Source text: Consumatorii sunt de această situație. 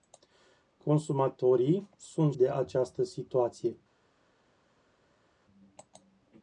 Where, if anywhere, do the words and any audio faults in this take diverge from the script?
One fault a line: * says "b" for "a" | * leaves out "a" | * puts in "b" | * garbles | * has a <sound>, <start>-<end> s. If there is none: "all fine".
all fine